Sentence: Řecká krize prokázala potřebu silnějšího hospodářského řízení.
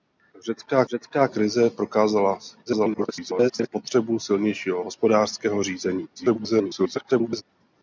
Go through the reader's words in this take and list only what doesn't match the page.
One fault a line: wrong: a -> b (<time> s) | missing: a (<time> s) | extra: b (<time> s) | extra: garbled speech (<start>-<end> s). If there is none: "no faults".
extra: řecká (0.9 s)
extra: garbled speech (2.7-3.7 s)
extra: garbled speech (6.2-7.4 s)